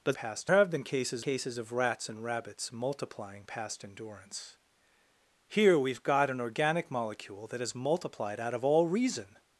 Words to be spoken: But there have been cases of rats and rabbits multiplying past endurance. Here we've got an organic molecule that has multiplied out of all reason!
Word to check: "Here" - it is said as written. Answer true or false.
true